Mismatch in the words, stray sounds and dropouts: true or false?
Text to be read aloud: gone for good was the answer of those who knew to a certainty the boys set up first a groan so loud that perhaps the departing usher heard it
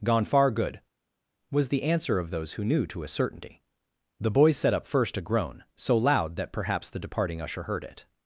true